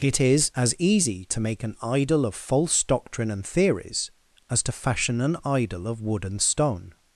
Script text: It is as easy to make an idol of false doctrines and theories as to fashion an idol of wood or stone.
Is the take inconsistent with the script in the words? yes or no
yes